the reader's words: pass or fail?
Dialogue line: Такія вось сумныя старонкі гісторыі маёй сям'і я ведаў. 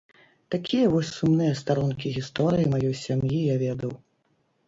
pass